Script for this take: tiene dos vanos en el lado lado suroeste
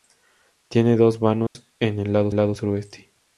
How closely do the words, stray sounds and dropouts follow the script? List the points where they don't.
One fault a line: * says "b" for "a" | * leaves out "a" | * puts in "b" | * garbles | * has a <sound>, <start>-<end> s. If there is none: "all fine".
* has a dropout, 1.5-1.6 s